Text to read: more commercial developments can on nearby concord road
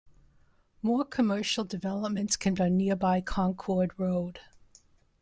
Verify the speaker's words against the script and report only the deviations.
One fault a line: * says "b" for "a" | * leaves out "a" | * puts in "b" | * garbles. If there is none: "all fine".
all fine